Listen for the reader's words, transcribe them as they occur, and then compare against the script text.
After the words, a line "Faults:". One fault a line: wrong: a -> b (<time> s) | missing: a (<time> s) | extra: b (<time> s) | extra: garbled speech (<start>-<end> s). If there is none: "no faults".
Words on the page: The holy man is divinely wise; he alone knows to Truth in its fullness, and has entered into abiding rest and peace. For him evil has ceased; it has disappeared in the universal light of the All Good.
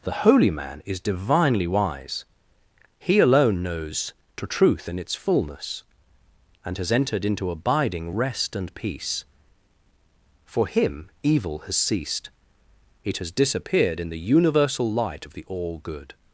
The holy man is divinely wise; he alone knows to Truth in its fullness, and has entered into abiding rest and peace. For him evil has ceased; it has disappeared in the universal light of the All Good.
Faults:
no faults